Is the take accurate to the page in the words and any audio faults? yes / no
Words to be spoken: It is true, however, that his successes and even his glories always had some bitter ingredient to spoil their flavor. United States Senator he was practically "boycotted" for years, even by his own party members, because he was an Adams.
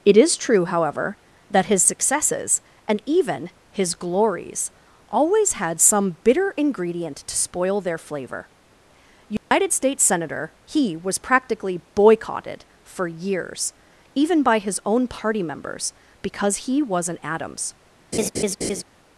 no